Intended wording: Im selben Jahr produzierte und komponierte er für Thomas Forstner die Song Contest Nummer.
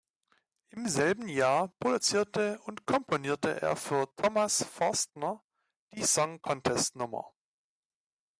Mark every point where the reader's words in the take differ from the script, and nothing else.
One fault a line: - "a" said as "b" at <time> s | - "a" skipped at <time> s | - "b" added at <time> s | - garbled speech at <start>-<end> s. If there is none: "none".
none